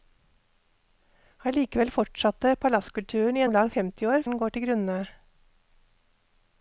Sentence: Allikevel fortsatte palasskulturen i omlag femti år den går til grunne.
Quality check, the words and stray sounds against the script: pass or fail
pass